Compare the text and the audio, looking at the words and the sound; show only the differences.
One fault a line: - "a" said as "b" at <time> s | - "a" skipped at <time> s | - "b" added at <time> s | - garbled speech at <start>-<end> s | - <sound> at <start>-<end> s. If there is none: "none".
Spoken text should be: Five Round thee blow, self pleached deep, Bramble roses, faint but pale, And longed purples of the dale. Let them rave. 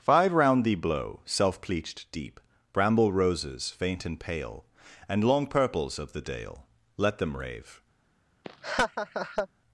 - "but" said as "and" at 4.0 s
- "longed" said as "long" at 5.2 s
- laugh at 8.4-9.5 s